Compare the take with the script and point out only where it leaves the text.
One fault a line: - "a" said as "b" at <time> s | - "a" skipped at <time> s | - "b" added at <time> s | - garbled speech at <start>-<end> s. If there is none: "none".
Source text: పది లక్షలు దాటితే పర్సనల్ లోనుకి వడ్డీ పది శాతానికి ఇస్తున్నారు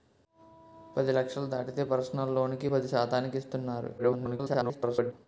- "వడ్డీ" skipped at 2.7 s
- garbled speech at 4.0-5.1 s